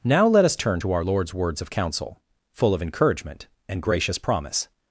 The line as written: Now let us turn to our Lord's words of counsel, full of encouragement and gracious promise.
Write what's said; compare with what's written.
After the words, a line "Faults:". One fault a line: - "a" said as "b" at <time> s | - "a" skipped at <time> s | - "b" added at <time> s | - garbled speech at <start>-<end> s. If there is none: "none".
Now let us turn to our Lord's words of counsel, full of encouragement and gracious promise.
Faults:
none